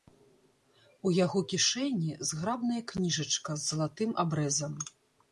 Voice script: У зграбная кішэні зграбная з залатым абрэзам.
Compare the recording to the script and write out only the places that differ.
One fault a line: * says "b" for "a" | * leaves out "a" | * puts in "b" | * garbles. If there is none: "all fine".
* says "яго" for "зграбная"
* puts in "кніжачка"